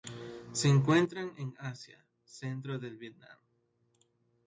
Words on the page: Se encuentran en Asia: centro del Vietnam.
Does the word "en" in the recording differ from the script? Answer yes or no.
no